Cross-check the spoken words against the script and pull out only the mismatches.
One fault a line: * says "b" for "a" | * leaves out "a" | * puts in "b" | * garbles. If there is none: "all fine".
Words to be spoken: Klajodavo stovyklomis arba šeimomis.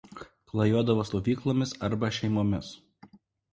all fine